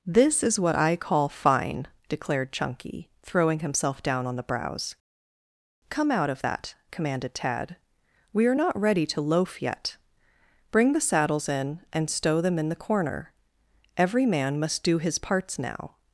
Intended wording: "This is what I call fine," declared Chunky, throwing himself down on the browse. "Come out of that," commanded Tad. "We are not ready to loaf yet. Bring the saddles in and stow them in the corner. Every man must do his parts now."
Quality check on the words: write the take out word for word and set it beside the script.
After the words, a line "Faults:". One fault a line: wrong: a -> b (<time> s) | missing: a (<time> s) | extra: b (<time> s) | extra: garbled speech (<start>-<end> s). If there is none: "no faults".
"This is what I call fine," declared Chunky, throwing himself down on the browse. "Come out of that," commanded Tad. "We are not ready to loaf yet. Bring the saddles in and stow them in the corner. Every man must do his parts now."
Faults:
no faults